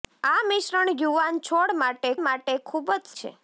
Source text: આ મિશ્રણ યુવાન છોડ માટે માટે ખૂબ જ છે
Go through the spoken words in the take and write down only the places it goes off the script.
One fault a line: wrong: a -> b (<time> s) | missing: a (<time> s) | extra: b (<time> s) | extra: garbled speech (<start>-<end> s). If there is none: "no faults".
no faults